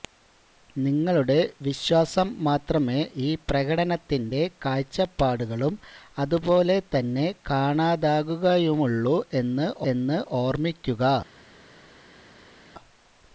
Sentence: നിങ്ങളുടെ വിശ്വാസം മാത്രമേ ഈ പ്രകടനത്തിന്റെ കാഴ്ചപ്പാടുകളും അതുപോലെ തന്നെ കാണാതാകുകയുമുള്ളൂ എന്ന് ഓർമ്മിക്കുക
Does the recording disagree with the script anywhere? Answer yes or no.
yes